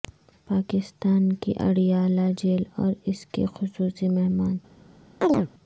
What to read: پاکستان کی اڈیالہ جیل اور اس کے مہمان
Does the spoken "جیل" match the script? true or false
true